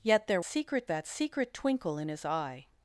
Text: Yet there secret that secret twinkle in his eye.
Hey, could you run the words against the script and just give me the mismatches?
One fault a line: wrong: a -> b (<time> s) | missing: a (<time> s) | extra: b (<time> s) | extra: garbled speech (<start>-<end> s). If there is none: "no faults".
no faults